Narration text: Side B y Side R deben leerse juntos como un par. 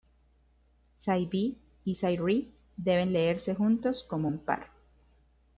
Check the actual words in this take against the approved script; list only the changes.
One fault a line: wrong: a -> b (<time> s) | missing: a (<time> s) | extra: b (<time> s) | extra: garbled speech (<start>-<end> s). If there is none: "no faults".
no faults